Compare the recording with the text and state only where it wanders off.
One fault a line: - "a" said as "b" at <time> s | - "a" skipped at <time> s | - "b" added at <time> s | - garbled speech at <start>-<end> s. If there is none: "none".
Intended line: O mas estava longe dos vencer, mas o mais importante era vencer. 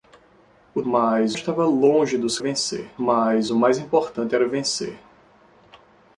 none